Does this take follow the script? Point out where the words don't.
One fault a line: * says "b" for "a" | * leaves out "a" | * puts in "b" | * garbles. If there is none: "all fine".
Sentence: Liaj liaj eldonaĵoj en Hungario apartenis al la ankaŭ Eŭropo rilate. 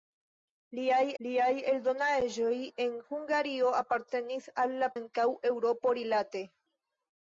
all fine